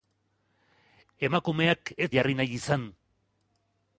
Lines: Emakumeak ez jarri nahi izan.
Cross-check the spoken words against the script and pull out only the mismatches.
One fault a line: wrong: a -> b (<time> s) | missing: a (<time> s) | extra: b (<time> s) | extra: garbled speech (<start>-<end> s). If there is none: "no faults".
no faults